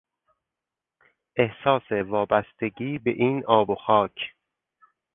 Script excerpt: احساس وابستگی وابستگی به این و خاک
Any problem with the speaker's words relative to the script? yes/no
yes